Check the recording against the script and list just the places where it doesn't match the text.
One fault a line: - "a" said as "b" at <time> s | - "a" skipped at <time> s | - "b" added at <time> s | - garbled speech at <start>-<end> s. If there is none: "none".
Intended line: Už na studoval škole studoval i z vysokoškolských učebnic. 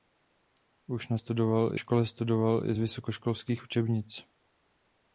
none